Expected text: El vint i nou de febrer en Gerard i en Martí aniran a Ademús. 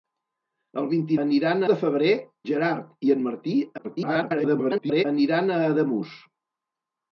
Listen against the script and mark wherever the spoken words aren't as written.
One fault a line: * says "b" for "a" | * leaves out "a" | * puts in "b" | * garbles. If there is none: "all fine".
* says "aniran" for "nou"
* leaves out "en"
* garbles